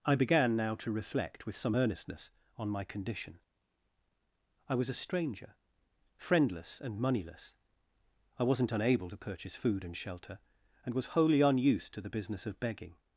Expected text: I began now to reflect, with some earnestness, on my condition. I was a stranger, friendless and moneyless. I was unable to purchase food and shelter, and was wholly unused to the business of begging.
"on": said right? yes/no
yes